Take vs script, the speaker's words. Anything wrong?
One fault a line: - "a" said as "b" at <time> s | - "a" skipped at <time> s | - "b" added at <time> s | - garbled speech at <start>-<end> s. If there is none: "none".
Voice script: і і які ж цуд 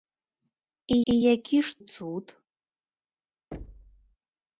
none